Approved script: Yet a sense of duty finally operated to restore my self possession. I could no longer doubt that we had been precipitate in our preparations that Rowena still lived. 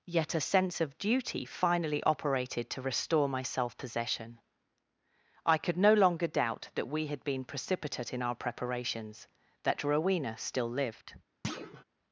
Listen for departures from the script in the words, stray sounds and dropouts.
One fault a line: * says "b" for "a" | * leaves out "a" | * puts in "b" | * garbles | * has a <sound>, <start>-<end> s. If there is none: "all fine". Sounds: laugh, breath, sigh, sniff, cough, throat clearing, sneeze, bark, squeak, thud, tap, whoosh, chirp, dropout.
* has a thud, 11.4-11.8 s